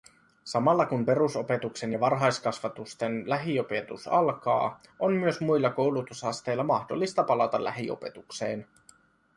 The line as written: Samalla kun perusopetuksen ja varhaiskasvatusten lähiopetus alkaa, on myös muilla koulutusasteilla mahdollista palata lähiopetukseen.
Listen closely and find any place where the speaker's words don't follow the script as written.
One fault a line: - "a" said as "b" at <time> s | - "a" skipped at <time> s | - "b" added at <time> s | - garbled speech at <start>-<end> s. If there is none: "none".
none